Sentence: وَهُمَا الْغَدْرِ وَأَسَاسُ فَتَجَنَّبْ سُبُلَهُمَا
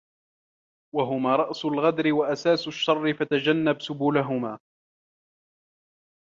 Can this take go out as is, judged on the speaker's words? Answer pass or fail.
fail